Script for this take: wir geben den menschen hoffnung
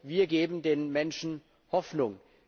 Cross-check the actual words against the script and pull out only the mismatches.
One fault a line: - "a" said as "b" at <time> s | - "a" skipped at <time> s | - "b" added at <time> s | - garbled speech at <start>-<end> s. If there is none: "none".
none